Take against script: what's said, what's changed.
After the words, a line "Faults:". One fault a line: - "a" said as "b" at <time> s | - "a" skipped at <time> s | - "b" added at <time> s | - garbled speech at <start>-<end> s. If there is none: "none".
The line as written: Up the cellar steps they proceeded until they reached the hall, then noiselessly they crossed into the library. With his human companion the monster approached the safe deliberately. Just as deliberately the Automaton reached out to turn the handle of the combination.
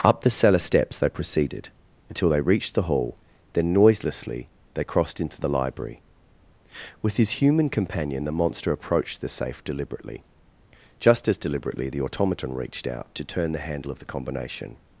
Up the cellar steps they proceeded until they reached the hall, then noiselessly they crossed into the library. With his human companion the monster approached the safe deliberately. Just as deliberately the Automaton reached out to turn the handle of the combination.
Faults:
none